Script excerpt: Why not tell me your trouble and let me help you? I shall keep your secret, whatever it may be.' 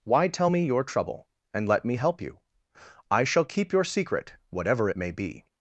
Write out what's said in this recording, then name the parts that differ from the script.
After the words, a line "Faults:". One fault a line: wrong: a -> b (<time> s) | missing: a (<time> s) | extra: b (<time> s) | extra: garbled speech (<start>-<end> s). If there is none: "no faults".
Why tell me your trouble and let me help you? I shall keep your secret, whatever it may be.'
Faults:
missing: not (0.3 s)